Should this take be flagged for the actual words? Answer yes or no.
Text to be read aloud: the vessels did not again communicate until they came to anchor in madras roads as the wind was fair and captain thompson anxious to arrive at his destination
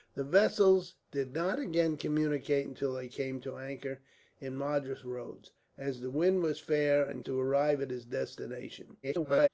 yes